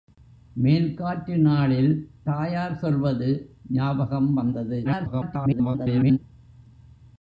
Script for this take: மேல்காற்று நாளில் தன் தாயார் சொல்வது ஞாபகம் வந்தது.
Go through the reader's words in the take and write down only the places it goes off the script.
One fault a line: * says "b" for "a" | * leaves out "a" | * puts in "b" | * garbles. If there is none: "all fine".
* leaves out "தன்"
* garbles